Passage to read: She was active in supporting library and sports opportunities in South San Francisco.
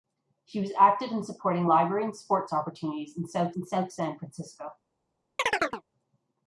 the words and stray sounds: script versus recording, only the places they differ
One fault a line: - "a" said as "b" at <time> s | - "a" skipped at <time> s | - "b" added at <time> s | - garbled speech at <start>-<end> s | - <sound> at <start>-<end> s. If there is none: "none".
- "in South" added at 3.6 s
- chirp at 5.4-5.8 s